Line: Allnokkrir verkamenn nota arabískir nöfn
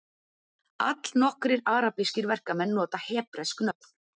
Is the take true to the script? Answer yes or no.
no